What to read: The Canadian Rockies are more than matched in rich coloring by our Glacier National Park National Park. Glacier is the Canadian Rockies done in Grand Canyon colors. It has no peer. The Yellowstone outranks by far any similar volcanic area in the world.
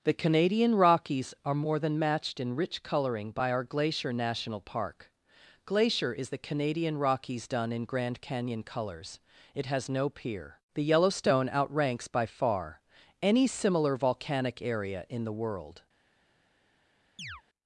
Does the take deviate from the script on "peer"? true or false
false